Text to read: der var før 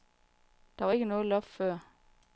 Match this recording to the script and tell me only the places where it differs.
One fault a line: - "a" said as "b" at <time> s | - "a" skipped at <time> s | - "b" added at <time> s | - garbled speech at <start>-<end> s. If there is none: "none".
- "ikke noget loft" added at 0.9 s